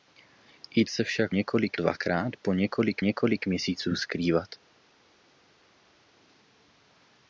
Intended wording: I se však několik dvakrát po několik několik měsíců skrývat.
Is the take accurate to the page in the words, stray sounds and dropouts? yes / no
yes